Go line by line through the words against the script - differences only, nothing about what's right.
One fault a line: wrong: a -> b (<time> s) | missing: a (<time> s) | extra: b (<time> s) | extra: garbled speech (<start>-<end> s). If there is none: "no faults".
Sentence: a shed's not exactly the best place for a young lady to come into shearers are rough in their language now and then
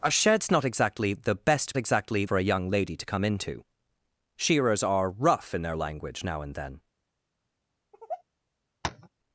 wrong: place -> exactly (1.8 s)